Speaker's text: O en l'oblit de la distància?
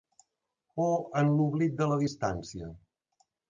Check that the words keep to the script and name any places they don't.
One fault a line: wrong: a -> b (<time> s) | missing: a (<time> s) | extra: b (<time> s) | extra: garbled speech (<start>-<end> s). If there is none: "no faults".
no faults